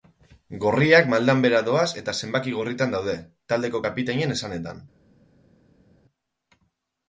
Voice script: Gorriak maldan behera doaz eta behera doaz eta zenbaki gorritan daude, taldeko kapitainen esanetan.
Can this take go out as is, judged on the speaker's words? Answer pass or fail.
fail